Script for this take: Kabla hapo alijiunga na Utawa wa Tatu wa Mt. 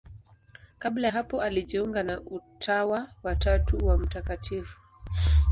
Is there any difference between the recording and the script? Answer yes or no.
no